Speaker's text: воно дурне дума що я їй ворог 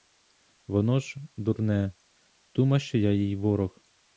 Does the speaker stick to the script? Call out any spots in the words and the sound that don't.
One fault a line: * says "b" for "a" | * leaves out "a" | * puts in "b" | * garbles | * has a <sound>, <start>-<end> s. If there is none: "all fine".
* puts in "ж"